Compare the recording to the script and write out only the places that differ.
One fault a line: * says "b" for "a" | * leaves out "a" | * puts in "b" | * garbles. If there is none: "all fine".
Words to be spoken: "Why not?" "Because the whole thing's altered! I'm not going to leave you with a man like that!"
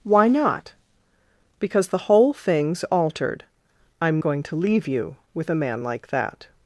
* leaves out "not"